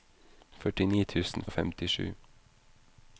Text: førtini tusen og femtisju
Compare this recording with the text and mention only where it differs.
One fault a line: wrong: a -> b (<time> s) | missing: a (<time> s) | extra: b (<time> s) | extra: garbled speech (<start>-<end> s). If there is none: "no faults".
no faults